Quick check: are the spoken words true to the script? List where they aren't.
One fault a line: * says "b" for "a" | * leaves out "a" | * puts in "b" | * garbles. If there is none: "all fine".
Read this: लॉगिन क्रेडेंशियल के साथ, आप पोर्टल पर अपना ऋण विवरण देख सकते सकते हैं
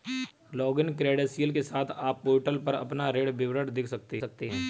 all fine